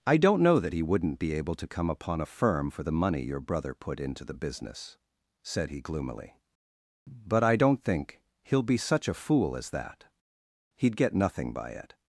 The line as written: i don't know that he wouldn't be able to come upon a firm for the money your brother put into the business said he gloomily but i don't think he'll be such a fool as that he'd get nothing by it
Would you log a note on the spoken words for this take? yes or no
no